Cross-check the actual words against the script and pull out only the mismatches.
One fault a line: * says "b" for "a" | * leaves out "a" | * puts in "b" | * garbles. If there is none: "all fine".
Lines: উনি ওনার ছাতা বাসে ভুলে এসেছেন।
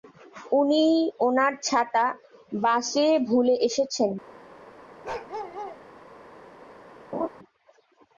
all fine